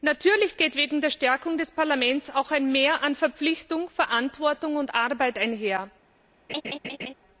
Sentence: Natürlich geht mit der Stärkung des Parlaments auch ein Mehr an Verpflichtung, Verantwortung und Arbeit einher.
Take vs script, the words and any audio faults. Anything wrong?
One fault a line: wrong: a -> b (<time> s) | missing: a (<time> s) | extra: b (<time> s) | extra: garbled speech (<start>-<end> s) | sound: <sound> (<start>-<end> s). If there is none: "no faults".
sound: laugh (6.5-7.1 s)